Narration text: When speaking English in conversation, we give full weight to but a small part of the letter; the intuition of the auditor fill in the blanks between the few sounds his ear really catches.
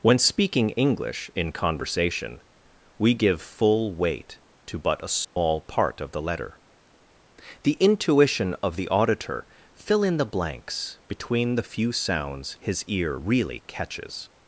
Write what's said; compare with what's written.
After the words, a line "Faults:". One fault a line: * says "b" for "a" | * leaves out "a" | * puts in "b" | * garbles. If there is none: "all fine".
When speaking English in conversation, we give full weight to but a small part of the letter; the intuition of the auditor fill in the blanks between the few sounds his ear really catches.
Faults:
all fine